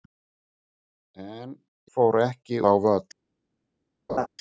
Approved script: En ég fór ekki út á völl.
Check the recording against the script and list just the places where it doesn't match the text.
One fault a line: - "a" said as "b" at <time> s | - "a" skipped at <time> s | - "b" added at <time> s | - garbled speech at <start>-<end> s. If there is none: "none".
- "ég" skipped at 1.5 s
- "út" skipped at 2.6 s